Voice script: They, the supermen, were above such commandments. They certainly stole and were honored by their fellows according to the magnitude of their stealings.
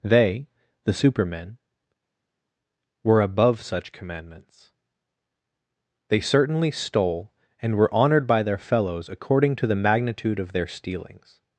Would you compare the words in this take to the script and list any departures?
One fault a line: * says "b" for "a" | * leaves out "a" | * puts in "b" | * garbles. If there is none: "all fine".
all fine